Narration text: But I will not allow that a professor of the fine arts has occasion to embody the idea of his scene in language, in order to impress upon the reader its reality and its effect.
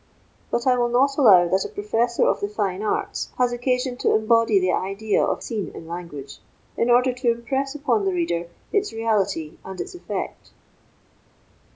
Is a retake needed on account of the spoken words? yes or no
yes